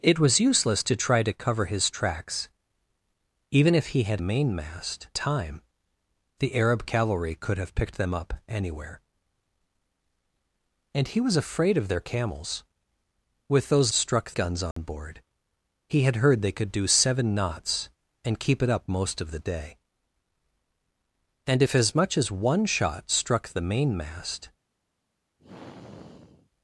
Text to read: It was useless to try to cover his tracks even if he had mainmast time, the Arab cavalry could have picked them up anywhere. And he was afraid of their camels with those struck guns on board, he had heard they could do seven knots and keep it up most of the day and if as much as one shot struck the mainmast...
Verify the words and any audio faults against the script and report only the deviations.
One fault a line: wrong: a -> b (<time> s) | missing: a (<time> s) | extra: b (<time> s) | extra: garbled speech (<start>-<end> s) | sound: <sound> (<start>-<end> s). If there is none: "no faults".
sound: dropout (14.7-14.8 s)
sound: sigh (25.4-26.5 s)